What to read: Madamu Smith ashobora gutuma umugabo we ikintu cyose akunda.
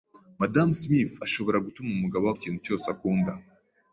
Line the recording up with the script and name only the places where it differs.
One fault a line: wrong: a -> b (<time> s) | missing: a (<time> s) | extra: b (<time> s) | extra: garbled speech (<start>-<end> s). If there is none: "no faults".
no faults